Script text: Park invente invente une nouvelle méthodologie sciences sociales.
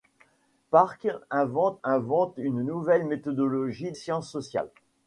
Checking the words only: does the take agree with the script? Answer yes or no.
yes